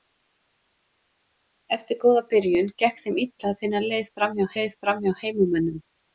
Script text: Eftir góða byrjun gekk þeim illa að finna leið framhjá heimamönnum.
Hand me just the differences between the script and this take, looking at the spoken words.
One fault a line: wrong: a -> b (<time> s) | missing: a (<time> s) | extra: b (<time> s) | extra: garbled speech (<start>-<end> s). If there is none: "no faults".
extra: leið framhjá (4.6 s)